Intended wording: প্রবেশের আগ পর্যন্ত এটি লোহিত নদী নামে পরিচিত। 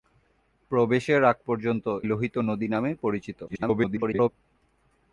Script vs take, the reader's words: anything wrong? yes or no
yes